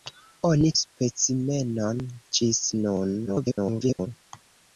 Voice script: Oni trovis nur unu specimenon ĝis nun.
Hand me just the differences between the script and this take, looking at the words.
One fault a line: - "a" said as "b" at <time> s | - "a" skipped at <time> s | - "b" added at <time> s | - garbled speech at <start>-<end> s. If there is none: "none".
- "trovis nur unu" skipped at 0.7 s
- garbled speech at 3.3-4.1 s